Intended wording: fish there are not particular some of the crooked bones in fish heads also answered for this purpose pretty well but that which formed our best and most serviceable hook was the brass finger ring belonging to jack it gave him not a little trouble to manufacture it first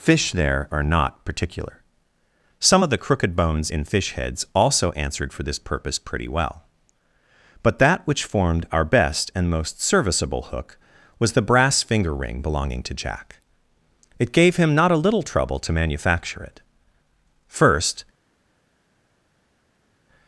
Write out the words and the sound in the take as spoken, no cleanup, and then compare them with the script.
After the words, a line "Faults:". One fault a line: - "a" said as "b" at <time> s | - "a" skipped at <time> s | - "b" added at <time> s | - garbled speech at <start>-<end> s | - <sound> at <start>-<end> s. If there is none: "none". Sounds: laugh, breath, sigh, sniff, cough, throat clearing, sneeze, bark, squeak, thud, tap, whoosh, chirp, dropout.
fish there are not particular some of the crooked bones in fish heads also answered for this purpose pretty well but that which formed our best and most serviceable hook was the brass finger ring belonging to jack it gave him not a little trouble to manufacture it first
Faults:
none